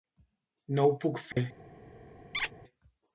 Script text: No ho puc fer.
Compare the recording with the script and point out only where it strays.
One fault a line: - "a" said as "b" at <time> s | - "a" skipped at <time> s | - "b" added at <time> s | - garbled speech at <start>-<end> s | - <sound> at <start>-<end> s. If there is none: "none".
- dropout at 1.3-1.4 s
- squeak at 2.3-2.5 s